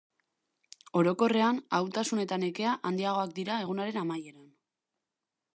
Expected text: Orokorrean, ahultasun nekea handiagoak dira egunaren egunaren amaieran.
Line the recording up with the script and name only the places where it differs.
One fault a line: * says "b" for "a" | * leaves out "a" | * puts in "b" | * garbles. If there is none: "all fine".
* puts in "eta"
* leaves out "egunaren"